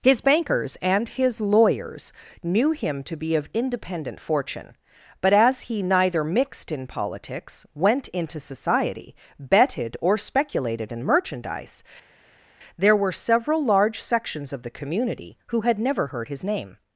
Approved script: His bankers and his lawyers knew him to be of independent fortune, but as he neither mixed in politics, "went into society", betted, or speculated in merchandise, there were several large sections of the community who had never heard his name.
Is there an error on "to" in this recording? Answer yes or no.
no